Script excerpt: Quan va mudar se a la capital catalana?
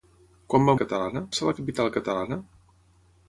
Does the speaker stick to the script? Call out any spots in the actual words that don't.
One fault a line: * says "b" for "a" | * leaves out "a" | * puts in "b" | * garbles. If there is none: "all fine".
* says "catalana" for "mudar"